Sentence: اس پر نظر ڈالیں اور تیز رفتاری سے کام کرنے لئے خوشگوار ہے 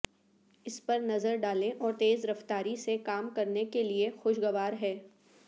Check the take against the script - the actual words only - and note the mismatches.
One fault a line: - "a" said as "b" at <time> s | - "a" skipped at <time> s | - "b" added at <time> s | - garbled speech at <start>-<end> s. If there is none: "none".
- "کے" added at 3.7 s